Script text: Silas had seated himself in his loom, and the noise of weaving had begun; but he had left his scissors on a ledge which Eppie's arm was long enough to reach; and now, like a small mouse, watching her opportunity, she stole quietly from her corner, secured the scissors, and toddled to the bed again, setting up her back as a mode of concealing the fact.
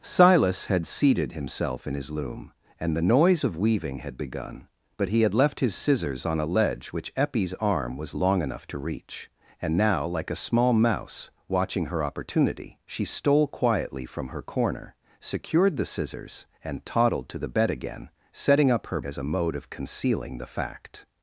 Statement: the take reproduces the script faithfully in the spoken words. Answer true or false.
false